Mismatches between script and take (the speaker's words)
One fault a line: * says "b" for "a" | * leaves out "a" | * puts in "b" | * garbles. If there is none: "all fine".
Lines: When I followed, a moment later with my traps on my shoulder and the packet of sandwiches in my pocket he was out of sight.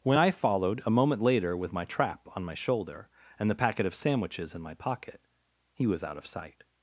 * says "trap" for "traps"